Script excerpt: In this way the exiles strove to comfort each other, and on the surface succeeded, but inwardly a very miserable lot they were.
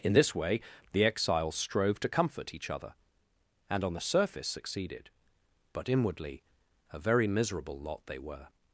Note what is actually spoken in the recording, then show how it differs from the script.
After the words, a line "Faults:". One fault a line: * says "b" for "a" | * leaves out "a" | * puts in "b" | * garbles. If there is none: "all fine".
In this way the exiles strove to comfort each other, and on the surface succeeded, but inwardly a very miserable lot they were.
Faults:
all fine